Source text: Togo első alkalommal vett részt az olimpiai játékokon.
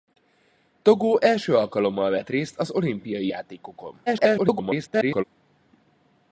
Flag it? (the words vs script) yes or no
yes